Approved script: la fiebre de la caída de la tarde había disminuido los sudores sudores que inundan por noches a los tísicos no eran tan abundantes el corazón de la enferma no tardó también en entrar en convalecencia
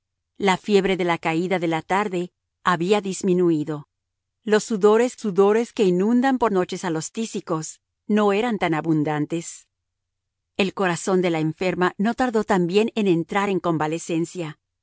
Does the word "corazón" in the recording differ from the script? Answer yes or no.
no